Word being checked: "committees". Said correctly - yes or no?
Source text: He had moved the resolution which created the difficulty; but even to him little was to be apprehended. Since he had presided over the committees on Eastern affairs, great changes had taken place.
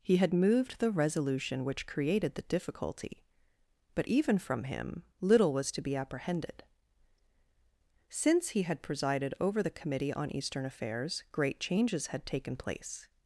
no